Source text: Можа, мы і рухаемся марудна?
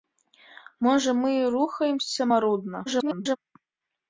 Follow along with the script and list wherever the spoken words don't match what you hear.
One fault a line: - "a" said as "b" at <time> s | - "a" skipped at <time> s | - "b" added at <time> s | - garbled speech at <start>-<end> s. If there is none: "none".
- garbled speech at 2.9-3.4 s